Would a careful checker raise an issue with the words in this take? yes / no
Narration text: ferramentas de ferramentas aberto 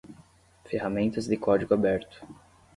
yes